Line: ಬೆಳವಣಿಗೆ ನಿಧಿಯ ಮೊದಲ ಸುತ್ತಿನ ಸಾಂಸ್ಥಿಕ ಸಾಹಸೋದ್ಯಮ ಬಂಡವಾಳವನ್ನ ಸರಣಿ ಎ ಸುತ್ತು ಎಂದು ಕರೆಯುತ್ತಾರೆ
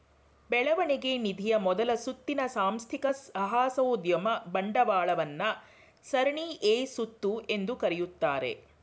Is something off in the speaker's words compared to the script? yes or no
no